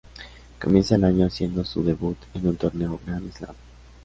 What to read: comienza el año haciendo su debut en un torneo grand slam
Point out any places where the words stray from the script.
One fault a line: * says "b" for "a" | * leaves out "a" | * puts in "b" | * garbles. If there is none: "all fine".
all fine